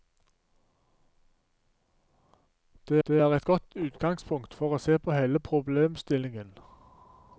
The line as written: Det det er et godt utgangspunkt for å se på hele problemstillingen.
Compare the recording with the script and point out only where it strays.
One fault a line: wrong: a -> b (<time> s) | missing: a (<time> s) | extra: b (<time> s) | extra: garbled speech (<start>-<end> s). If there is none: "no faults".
no faults